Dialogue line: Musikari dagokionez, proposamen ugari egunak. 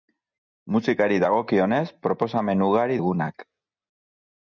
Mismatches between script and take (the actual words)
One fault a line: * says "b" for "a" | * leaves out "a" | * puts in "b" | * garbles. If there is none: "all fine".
all fine